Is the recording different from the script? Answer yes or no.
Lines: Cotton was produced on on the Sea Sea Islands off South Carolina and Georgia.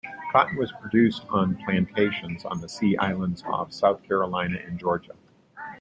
yes